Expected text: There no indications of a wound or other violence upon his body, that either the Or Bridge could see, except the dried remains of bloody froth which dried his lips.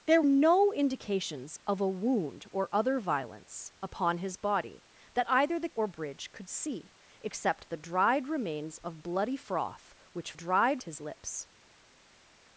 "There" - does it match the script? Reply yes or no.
yes